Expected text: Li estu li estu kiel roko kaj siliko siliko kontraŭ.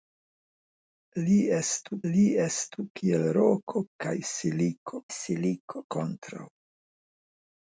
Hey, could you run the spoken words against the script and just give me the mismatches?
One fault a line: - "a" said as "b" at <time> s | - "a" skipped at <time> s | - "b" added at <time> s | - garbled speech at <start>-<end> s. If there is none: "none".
none